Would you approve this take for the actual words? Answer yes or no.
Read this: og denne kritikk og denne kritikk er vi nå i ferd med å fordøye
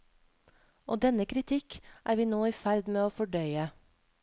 no